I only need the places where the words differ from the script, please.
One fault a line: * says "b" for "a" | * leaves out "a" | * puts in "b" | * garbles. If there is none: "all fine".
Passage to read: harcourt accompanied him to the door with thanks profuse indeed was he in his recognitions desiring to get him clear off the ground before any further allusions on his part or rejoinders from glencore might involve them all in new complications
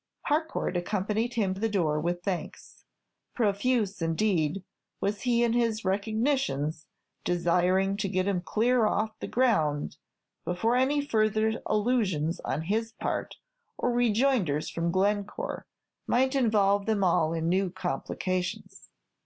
* leaves out "to"